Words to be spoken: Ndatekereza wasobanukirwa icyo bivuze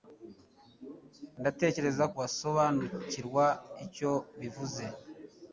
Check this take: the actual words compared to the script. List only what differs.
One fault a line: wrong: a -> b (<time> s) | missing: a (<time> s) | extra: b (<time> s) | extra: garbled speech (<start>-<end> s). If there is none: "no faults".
no faults